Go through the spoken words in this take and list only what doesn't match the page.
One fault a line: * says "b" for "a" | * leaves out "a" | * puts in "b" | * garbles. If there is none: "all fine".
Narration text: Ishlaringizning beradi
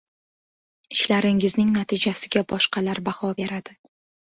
* puts in "natijasiga boshqalar baho"